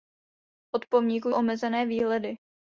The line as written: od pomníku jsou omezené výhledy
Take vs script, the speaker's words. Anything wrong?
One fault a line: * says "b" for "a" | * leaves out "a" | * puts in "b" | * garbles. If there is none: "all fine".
* leaves out "jsou"